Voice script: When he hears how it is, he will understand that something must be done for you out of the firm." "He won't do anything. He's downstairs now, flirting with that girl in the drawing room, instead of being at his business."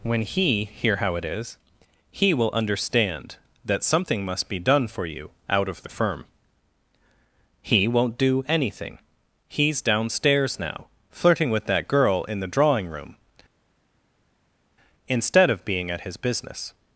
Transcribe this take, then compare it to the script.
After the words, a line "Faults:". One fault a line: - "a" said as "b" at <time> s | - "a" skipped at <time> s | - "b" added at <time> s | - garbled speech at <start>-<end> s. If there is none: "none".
When he hear how it is, he will understand that something must be done for you out of the firm." "He won't do anything. He's downstairs now, flirting with that girl in the drawing room, instead of being at his business."
Faults:
- "hears" said as "hear" at 0.7 s